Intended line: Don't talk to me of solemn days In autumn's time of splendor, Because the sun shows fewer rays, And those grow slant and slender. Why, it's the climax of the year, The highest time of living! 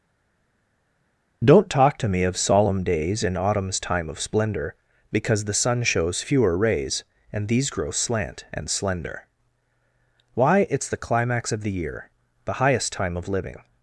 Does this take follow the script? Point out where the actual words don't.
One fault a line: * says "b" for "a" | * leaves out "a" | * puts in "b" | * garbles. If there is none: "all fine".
* says "these" for "those"